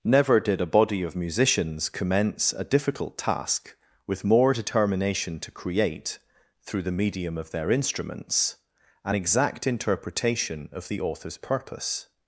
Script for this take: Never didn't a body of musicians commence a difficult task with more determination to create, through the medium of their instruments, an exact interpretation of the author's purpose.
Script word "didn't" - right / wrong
wrong